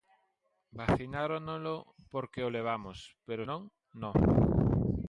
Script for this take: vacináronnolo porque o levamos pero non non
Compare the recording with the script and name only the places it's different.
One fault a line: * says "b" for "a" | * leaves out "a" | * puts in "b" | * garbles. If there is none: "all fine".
all fine